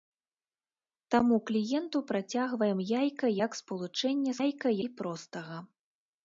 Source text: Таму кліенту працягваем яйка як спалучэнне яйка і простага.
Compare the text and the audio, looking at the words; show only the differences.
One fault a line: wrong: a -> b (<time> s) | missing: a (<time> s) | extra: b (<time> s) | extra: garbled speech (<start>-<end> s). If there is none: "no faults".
no faults